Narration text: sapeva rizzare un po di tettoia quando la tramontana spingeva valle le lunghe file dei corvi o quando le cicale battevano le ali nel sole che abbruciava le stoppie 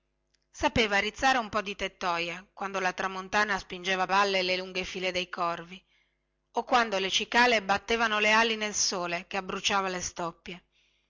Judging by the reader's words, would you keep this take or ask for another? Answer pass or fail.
pass